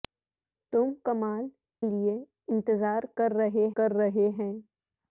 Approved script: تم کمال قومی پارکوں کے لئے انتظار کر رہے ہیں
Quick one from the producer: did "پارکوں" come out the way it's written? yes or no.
no